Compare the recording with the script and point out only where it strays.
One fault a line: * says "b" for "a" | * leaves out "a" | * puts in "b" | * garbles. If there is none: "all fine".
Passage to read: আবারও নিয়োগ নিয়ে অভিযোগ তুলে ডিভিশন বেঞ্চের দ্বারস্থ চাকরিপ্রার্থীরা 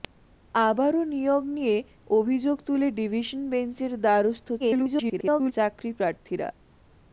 * garbles